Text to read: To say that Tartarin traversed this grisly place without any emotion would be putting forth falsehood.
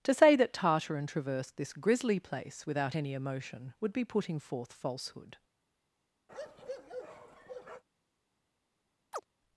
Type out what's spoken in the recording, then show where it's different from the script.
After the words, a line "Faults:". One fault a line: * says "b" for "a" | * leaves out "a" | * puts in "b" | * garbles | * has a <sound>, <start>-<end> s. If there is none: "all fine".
To say that Tartarin traversed this grisly place without any emotion would be putting forth falsehood.
Faults:
* has a bark, 6.3-7.8 s
* has a chirp, 9.1-9.3 s